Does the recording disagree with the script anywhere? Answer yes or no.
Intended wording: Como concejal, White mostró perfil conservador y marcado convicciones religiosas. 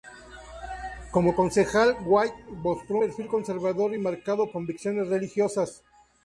no